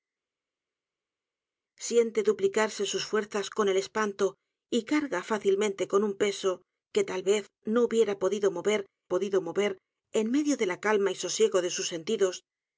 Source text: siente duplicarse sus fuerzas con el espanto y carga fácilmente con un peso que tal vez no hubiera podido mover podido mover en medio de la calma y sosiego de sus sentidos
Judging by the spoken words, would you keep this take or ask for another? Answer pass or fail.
pass